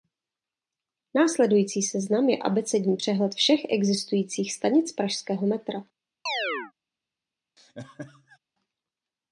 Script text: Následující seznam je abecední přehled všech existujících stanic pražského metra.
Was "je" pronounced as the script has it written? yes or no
yes